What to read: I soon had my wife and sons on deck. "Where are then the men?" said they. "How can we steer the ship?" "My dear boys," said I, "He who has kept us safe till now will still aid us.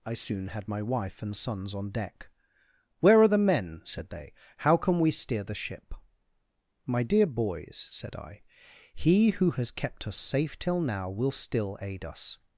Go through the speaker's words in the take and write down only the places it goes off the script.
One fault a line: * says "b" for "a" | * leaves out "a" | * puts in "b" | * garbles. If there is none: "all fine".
* leaves out "then"